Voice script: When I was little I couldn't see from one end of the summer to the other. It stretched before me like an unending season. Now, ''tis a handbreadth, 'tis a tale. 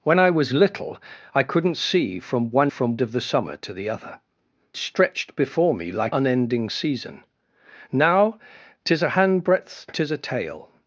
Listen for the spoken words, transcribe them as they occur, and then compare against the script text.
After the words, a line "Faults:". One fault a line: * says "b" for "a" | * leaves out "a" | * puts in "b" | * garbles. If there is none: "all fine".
When I was little I couldn't see from one from of the summer to the other. Stretched before me like unending season. Now, ''tis a handbreadth, 'tis a tale.
Faults:
* says "from" for "end"
* leaves out "It"
* leaves out "an"